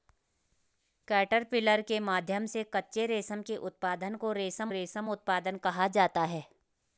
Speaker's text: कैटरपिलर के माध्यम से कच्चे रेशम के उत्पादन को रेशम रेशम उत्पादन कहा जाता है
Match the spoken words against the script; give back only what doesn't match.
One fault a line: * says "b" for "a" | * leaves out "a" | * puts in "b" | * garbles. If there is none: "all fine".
all fine